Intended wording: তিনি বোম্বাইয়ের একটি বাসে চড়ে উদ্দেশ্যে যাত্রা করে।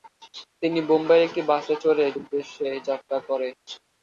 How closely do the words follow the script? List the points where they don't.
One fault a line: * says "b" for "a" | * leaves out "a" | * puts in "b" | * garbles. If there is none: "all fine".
all fine